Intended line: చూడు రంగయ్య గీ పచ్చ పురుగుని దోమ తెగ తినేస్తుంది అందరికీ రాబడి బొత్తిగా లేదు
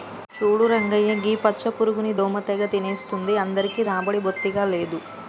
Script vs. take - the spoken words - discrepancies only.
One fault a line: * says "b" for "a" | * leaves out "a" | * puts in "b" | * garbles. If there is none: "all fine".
all fine